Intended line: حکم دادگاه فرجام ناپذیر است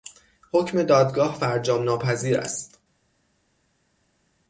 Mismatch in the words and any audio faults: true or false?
false